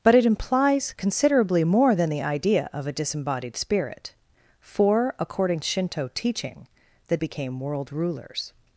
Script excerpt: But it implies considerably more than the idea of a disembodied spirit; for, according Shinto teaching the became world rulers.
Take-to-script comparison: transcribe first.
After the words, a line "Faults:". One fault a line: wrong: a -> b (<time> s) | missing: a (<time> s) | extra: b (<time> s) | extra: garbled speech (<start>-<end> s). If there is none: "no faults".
But it implies considerably more than the idea of a disembodied spirit; for, according Shinto teaching the became world rulers.
Faults:
no faults